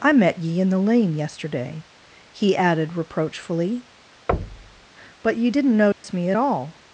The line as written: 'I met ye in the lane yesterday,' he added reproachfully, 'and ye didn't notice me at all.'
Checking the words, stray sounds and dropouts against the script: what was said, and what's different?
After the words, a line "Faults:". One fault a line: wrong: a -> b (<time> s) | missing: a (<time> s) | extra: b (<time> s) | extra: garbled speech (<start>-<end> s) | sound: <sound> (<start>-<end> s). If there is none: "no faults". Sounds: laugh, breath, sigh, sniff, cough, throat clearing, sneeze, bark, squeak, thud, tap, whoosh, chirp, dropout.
'I met ye in the lane yesterday,' he added reproachfully, 'but ye didn't notice me at all.'
Faults:
sound: thud (4.3-4.9 s)
wrong: and -> but (5.2 s)
sound: dropout (5.9-6.0 s)